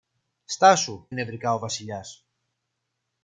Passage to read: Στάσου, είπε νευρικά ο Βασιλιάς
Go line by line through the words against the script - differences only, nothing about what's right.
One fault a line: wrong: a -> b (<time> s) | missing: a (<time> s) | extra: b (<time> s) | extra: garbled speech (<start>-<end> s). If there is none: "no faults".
missing: είπε (1.1 s)